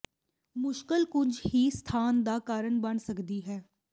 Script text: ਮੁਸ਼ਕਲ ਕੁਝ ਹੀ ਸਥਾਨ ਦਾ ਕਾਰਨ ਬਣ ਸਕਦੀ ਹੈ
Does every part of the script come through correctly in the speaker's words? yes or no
yes